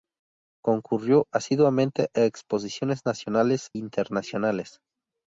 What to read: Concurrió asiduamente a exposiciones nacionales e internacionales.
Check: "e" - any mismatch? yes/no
yes